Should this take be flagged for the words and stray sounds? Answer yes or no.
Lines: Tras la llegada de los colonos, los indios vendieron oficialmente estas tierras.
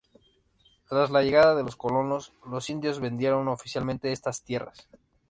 no